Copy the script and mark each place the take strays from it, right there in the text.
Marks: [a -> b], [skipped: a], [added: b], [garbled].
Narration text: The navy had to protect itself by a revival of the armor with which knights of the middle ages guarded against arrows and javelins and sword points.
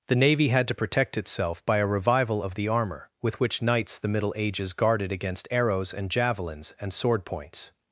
The navy had to protect itself by a revival of the armor with which knights [skipped: of] the middle ages guarded against arrows and javelins and sword points.